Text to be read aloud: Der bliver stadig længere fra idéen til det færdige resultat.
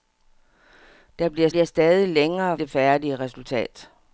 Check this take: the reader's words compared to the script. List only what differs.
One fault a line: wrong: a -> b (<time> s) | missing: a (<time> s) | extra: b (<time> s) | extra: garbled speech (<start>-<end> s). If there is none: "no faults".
extra: bliver (1.5 s)
missing: fra idéen til (2.6 s)